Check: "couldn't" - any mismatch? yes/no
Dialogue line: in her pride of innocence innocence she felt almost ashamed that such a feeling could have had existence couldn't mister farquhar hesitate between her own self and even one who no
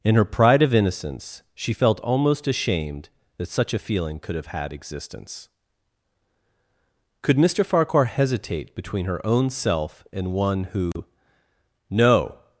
yes